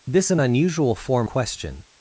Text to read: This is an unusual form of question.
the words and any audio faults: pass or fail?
fail